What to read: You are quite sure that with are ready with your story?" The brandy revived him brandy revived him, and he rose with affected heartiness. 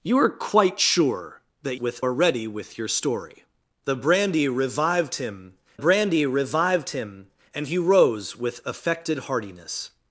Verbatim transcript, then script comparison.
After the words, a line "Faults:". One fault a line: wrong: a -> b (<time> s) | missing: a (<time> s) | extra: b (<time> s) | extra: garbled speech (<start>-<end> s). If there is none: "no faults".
You are quite sure that with are ready with your story?" The brandy revived him brandy revived him, and he rose with affected heartiness.
Faults:
no faults